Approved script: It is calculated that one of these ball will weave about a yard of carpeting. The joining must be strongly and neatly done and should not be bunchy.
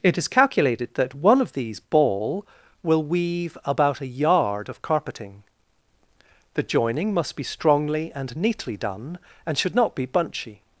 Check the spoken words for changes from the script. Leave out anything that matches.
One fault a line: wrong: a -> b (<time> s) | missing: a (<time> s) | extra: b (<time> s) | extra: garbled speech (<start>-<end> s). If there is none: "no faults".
no faults